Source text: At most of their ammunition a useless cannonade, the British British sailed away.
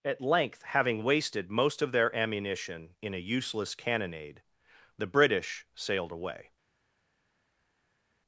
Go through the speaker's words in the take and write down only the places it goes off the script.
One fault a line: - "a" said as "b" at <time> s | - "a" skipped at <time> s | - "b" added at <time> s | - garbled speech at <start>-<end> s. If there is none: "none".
- "length having wasted" added at 0.2 s
- "in" added at 3.0 s
- "British" skipped at 5.7 s